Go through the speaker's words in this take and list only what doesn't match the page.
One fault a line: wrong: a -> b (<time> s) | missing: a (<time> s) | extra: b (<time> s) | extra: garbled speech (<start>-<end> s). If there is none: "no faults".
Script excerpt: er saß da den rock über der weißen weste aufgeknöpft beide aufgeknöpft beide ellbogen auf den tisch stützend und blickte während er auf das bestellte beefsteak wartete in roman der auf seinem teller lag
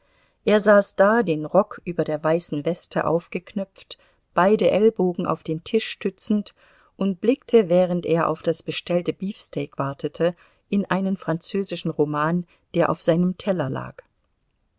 missing: aufgeknöpft beide (4.7 s)
extra: einen französischen (10.9 s)